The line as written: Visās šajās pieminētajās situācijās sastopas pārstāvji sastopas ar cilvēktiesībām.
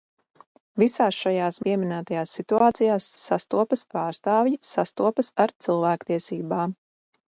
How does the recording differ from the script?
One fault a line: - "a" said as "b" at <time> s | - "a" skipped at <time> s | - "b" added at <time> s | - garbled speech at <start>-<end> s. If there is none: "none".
none